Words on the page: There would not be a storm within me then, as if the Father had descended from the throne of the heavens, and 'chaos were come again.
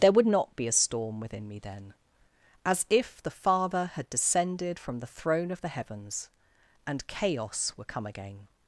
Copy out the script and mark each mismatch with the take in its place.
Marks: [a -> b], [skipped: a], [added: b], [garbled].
There would not be a storm within me then, as if the Father had descended from the throne of the heavens, and 'chaos were come again.